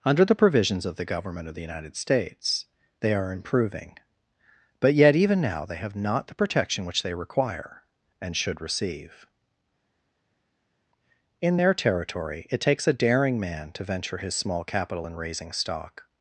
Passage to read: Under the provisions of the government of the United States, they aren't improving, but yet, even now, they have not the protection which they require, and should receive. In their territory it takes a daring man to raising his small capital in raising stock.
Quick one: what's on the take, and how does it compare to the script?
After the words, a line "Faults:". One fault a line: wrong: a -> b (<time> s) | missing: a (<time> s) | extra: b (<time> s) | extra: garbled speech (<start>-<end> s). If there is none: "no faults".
Under the provisions of the government of the United States, they are improving, but yet, even now, they have not the protection which they require, and should receive. In their territory it takes a daring man to venture his small capital in raising stock.
Faults:
wrong: aren't -> are (3.1 s)
wrong: raising -> venture (13.8 s)